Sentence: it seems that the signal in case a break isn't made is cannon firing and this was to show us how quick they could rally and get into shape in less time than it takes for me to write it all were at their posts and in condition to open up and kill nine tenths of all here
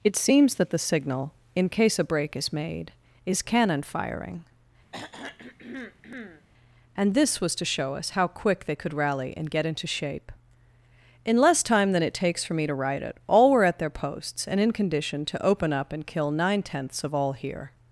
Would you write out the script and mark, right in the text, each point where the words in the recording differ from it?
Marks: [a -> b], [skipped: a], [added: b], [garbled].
it seems that the signal in case a break [isn't -> is] made is cannon firing and this was to show us how quick they could rally and get into shape in less time than it takes for me to write it all were at their posts and in condition to open up and kill nine tenths of all here